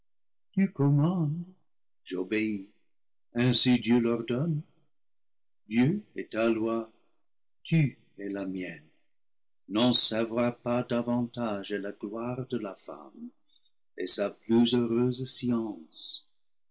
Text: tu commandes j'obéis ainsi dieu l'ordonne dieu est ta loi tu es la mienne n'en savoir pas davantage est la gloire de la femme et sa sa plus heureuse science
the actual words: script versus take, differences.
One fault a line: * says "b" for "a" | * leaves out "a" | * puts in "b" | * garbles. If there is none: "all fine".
* leaves out "sa"